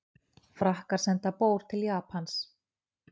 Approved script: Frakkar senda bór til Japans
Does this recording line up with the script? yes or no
yes